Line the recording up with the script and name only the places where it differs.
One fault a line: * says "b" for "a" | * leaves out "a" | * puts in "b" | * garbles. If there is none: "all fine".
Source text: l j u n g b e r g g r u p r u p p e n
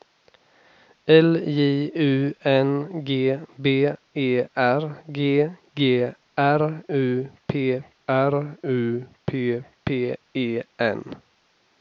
all fine